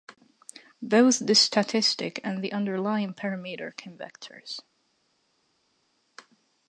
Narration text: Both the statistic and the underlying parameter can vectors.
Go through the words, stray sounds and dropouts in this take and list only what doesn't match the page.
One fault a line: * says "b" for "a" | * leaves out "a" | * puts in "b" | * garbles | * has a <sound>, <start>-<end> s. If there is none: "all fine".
all fine